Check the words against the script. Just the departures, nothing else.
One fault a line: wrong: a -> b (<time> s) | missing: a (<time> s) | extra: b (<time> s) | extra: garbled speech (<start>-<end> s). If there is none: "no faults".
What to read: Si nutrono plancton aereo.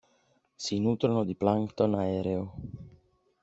extra: di (1.2 s)